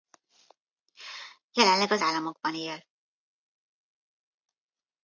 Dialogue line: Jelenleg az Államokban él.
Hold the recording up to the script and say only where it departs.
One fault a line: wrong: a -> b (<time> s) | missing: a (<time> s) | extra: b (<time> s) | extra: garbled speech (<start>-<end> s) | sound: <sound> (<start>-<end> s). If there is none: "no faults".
no faults